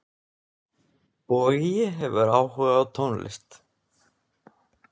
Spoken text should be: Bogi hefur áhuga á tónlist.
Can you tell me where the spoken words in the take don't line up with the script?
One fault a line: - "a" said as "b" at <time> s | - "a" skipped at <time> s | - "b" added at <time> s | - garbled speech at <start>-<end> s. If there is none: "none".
none